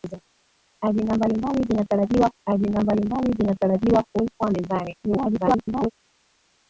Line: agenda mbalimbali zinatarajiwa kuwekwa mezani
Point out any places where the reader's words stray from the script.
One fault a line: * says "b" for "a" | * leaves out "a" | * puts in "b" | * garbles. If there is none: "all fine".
* puts in "agenda mbalimbali zinatarajiwa"
* garbles